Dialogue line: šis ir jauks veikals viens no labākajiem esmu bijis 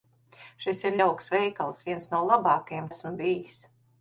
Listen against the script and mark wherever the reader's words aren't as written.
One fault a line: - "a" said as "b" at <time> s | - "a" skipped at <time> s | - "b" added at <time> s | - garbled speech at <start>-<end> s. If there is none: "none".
none